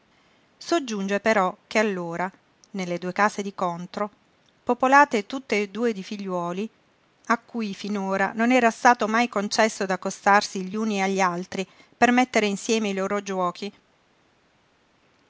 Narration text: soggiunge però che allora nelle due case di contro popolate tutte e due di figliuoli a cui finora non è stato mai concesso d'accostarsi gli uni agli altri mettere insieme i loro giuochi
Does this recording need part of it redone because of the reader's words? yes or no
yes